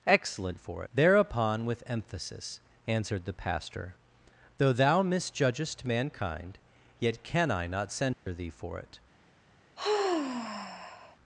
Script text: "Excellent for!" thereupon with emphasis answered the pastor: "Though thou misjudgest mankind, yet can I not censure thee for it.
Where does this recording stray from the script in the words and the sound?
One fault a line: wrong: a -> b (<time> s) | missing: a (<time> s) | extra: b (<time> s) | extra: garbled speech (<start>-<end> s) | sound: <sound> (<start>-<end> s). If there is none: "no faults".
sound: dropout (8.1-8.3 s)
sound: sigh (9.8-11.2 s)